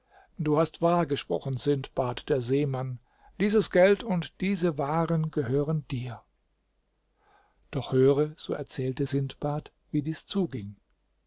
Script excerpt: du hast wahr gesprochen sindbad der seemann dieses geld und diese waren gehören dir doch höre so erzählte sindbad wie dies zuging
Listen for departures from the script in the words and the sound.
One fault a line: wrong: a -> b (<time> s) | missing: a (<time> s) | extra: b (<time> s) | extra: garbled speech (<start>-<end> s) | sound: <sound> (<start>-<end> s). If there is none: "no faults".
no faults